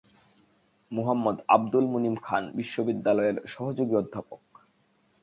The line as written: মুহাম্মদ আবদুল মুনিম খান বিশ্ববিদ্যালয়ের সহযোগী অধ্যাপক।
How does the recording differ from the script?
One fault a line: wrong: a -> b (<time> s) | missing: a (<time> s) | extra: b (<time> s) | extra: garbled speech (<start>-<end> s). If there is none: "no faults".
no faults